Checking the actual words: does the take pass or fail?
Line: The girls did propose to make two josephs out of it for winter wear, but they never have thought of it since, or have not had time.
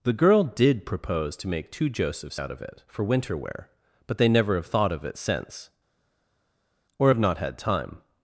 fail